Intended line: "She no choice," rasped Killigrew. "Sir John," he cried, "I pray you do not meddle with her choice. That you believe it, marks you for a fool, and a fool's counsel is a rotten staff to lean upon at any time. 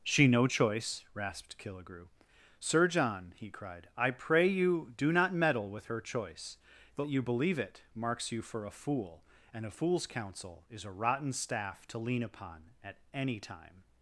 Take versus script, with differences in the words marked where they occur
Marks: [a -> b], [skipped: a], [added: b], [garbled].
"She no choice," rasped Killigrew. "Sir John," he cried, "I pray you do not meddle with her choice. That you believe it, marks you for a fool, and a fool's counsel is a rotten staff to lean upon at any time.